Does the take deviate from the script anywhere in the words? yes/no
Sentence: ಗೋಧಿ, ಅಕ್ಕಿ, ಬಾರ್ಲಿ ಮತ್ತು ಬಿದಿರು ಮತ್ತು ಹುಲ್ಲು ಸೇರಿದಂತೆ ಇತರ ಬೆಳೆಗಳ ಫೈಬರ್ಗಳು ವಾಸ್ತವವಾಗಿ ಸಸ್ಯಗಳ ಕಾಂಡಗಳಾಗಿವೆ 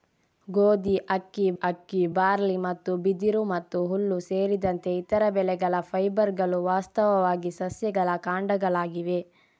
yes